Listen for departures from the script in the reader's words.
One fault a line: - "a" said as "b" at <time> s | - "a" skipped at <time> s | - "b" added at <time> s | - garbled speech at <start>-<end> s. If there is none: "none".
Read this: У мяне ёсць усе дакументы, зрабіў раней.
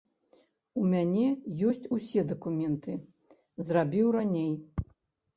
none